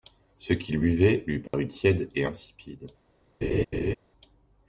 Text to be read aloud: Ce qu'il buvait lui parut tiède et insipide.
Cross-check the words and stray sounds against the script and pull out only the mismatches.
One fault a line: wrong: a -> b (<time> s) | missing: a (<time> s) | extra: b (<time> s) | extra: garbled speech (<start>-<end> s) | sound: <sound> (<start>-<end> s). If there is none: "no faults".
sound: dropout (1.5-1.5 s)
sound: laugh (3.4-4.0 s)